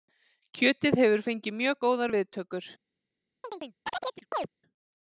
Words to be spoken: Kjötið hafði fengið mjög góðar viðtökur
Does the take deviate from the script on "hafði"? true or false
true